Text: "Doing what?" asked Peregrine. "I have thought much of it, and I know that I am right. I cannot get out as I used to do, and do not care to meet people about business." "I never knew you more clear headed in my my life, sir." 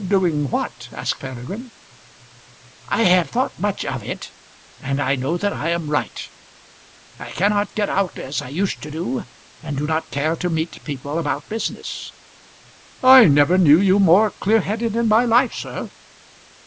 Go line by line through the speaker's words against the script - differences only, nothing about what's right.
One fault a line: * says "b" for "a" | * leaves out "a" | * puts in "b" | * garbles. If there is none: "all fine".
* leaves out "my"